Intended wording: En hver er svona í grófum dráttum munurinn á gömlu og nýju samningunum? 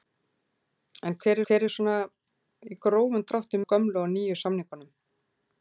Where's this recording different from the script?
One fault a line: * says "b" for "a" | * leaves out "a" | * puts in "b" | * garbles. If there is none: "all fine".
* puts in "hver"
* leaves out "munurinn"